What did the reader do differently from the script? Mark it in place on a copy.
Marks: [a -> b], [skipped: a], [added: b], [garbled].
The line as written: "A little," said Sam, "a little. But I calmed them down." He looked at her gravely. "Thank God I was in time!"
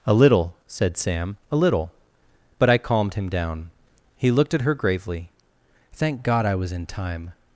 "A little," said Sam, "a little. But I calmed [them -> him] down." He looked at her gravely. "Thank God I was in time!"